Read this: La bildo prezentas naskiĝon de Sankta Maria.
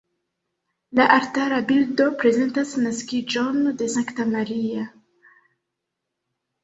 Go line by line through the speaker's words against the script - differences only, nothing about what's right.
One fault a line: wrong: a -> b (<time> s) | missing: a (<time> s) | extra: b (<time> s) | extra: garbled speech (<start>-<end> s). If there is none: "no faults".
extra: altara (1.1 s)